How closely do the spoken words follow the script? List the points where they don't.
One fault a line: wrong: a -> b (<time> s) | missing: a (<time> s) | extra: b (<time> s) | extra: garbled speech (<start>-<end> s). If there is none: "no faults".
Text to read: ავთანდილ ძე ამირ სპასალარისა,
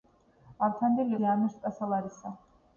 no faults